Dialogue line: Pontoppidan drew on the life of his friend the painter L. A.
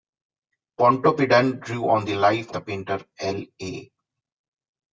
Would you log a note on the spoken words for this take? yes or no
yes